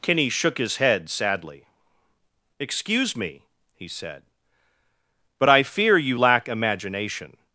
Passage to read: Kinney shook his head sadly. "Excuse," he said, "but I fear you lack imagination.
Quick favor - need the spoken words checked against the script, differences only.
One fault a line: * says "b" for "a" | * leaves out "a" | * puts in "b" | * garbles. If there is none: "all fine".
* puts in "me"